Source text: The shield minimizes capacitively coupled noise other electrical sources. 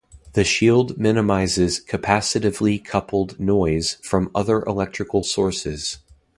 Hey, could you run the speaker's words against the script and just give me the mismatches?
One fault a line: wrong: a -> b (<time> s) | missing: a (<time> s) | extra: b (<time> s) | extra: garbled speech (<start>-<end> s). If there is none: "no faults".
extra: from (4.0 s)